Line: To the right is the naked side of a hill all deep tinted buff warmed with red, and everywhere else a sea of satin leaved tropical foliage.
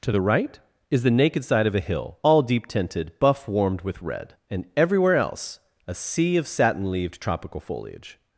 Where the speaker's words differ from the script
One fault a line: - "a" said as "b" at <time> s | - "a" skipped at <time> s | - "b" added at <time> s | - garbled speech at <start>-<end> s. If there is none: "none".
none